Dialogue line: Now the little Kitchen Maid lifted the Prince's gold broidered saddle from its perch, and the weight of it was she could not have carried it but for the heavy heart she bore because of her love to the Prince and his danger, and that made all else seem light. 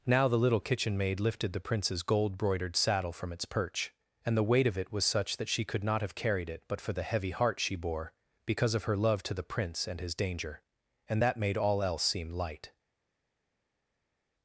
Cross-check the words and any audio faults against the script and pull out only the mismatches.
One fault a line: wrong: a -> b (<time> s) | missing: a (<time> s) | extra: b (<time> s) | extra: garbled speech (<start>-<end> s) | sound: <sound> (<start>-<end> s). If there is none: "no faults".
extra: such that (5.0 s)